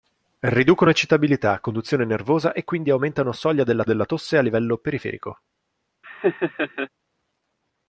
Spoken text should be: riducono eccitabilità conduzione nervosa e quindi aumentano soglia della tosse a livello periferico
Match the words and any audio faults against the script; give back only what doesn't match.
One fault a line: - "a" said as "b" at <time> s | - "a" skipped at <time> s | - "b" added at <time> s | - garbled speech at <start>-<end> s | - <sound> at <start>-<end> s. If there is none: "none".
- "della" added at 3.8 s
- laugh at 6.0-6.9 s